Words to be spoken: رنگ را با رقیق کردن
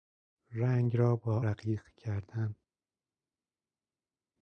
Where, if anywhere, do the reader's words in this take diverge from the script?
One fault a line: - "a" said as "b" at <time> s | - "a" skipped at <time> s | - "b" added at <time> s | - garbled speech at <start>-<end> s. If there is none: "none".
none